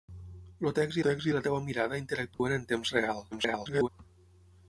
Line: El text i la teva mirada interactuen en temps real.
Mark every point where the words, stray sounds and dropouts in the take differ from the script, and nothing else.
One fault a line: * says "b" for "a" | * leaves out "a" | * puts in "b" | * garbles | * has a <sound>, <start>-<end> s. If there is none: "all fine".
* puts in "text"
* has a dropout, 2.3-2.4 s
* garbles